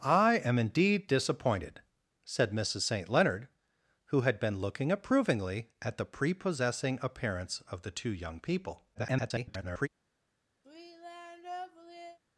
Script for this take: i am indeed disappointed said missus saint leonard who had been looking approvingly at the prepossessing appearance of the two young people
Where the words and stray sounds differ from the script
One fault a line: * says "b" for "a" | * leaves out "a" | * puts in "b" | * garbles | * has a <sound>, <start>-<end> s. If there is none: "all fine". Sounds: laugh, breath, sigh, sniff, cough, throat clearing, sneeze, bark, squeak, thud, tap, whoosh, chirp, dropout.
* garbles
* has a sigh, 10.6-12.2 s